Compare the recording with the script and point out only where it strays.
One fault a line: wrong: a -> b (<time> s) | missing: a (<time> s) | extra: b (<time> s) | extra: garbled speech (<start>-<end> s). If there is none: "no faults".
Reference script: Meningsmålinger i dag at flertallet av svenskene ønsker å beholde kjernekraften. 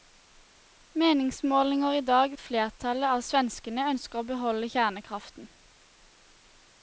no faults